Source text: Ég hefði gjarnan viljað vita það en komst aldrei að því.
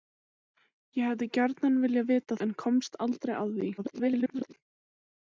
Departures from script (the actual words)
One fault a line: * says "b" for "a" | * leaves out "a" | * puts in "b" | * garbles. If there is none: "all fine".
* leaves out "það"
* garbles